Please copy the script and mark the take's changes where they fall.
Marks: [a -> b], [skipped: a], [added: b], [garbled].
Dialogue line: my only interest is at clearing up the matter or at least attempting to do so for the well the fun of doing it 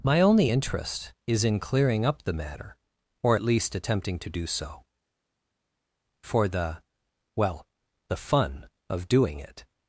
my only interest is [at -> in] clearing up the matter or at least attempting to do so for the well the fun of doing it